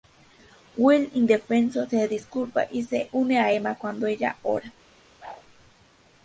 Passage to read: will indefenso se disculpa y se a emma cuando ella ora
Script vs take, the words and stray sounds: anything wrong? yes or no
yes